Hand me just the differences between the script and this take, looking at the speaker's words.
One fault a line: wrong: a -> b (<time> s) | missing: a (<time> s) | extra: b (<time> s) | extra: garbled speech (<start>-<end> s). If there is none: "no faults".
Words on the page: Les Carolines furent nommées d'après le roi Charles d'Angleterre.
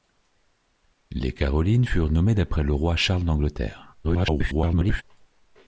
extra: garbled speech (4.0-5.0 s)